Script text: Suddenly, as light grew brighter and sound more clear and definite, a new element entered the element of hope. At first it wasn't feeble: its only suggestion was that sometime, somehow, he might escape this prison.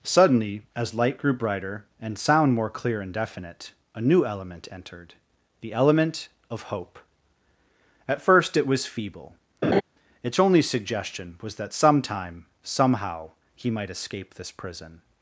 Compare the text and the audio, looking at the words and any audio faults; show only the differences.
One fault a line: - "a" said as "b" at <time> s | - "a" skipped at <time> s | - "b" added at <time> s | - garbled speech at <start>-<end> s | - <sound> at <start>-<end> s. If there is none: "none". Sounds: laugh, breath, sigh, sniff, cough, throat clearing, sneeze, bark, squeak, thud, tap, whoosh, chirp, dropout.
- "wasn't" said as "was" at 8.7 s
- laugh at 9.6-9.8 s